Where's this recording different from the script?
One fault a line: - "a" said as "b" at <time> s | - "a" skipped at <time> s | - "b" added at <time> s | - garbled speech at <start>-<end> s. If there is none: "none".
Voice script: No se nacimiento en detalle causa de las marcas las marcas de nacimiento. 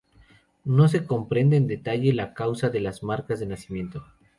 - "nacimiento" said as "comprende" at 1.1 s
- "la" added at 2.1 s
- "las marcas" skipped at 3.4 s